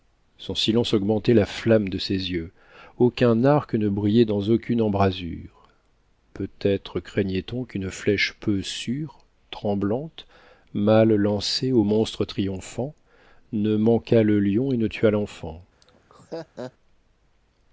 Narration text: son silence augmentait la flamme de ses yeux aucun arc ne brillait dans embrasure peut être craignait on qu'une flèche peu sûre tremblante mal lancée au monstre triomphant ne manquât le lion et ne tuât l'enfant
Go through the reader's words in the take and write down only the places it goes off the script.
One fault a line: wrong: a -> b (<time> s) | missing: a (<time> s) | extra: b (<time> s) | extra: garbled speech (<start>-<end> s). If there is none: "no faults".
extra: aucune (4.5 s)